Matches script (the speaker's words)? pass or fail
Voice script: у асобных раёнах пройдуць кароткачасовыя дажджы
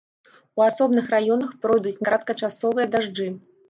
pass